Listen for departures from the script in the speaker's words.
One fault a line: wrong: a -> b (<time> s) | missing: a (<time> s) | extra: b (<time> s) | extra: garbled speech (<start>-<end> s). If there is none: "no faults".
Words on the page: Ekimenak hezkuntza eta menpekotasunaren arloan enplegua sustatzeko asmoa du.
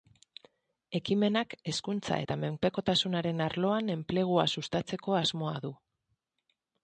no faults